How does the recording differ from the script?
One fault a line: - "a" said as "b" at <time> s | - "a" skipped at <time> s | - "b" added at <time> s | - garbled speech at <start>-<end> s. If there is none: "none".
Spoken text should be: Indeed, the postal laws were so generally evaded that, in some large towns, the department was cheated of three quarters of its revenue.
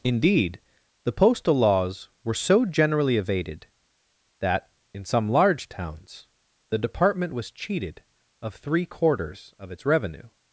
none